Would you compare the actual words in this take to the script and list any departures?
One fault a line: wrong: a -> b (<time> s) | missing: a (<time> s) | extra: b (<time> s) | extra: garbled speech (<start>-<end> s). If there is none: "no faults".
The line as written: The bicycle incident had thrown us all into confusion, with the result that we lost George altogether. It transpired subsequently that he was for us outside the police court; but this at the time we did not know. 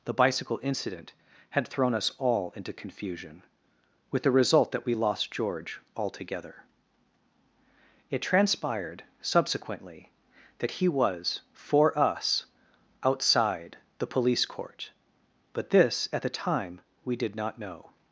no faults